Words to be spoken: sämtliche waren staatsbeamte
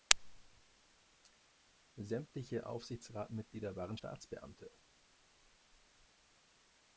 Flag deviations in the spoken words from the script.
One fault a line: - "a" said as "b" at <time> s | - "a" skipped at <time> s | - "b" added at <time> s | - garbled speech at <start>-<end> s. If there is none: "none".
- "aufsichtsratsmitglieder" added at 2.6 s